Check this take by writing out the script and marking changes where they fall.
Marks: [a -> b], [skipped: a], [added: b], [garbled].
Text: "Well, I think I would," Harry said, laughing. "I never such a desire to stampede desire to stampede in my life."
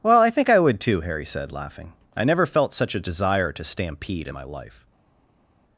"Well, I think I would," [added: too] Harry said, laughing. "I never [added: felt] such a desire to stampede [skipped: desire to stampede] in my life."